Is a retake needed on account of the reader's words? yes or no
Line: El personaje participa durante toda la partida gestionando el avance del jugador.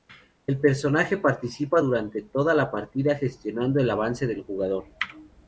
no